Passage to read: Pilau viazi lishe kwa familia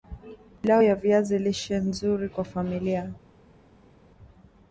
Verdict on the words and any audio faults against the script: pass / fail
fail